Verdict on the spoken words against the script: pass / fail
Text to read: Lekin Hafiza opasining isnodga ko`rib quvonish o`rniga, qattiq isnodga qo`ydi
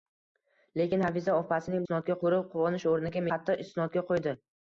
pass